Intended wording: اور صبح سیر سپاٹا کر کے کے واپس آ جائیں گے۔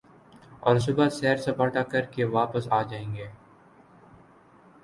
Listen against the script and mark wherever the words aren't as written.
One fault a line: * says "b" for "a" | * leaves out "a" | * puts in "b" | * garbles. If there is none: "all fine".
* leaves out "کے"